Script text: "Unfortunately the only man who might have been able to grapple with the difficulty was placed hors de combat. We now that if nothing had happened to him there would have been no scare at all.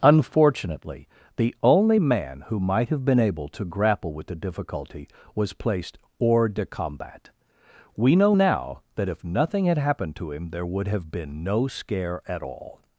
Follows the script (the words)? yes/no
no